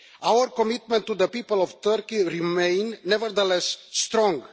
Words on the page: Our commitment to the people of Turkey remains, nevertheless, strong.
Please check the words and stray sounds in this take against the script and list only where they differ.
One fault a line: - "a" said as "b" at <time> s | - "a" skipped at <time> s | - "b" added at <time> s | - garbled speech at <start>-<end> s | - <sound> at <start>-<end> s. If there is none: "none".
none